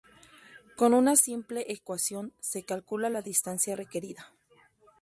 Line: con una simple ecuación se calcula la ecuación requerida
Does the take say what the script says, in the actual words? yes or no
no